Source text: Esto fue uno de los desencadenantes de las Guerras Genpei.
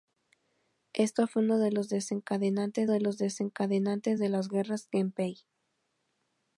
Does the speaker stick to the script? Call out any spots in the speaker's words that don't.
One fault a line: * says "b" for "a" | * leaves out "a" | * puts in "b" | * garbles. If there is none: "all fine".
* puts in "los desencadenantes de"